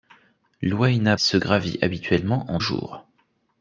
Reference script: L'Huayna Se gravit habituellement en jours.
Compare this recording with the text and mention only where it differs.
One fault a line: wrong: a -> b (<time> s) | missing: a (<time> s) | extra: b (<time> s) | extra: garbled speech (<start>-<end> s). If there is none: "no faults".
no faults